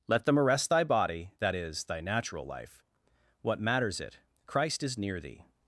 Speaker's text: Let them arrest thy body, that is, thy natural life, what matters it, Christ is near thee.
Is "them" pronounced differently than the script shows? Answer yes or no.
no